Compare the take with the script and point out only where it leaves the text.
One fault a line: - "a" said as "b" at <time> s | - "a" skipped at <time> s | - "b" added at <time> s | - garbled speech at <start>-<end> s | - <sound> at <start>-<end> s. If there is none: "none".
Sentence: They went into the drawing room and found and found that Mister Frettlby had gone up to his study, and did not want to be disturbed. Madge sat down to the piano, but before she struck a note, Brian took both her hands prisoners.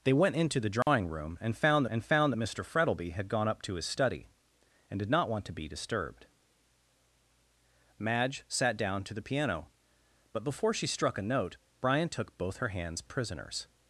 - dropout at 0.8-0.9 s